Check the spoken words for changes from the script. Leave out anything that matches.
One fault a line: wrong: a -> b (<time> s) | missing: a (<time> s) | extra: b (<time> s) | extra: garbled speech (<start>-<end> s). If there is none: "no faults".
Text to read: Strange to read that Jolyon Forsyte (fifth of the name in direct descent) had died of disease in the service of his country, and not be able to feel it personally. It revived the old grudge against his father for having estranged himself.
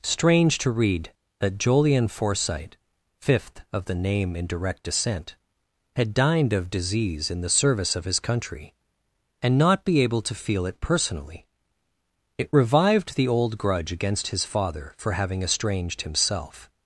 wrong: died -> dined (6.2 s)